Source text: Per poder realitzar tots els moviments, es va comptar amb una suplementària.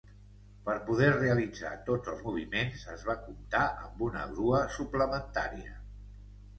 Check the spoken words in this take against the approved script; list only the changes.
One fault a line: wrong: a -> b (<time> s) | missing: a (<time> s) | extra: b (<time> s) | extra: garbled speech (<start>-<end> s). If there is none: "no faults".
extra: grua (4.3 s)